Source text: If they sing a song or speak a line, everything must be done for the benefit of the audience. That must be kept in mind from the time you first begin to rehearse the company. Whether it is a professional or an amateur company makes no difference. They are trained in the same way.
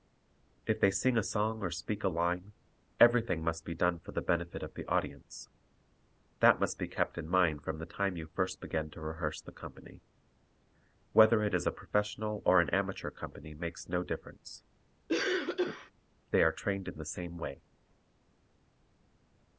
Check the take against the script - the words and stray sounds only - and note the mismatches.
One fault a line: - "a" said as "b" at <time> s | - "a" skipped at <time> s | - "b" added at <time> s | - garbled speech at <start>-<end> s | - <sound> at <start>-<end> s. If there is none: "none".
- cough at 15.1-15.9 s